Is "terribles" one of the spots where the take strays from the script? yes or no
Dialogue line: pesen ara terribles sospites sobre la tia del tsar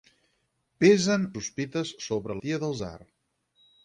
yes